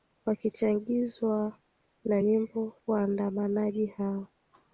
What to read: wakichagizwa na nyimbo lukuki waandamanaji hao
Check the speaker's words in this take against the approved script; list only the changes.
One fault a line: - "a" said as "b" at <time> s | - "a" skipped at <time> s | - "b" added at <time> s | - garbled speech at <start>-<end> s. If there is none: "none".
- "lukuki" skipped at 2.7 s